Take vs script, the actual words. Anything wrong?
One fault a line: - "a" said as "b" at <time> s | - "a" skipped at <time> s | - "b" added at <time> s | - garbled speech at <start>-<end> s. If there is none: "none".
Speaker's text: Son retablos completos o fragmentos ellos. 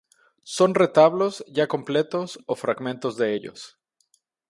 - "ya" added at 1.5 s
- "de" added at 3.2 s